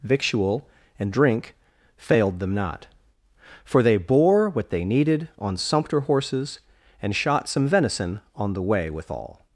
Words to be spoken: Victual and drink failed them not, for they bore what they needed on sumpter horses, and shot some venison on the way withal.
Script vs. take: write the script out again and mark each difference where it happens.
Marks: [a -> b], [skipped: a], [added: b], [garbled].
Victual and drink failed them not, for they bore what they needed on sumpter horses, and shot some venison on the way withal.